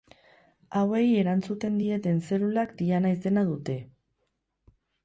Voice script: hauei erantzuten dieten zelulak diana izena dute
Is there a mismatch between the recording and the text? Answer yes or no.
no